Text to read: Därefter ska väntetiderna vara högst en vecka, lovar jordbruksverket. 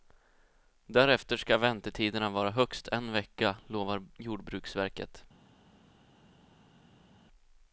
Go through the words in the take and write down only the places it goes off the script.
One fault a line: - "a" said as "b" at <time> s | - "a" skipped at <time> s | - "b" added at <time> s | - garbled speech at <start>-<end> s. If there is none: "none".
none